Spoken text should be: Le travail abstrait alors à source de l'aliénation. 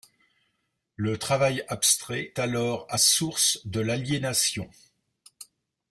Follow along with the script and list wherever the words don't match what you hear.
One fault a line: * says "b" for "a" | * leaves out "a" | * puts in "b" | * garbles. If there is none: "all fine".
all fine